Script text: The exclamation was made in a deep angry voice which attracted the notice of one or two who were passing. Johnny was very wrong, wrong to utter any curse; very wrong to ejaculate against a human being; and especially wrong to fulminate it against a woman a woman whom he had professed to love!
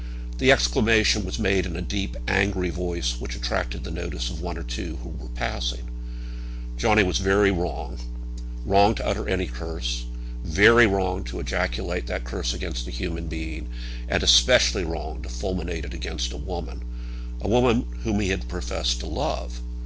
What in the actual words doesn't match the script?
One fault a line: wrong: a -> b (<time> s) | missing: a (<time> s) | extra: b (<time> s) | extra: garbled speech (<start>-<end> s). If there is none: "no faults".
extra: that curse (12.1 s)